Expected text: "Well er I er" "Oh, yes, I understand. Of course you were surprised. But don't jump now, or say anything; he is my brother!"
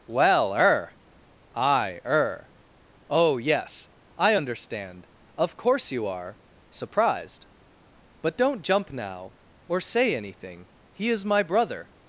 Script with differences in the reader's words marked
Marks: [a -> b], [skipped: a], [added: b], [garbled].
"Well er I er" "Oh, yes, I understand. Of course you [were -> are] surprised. But don't jump now, or say anything; he is my brother!"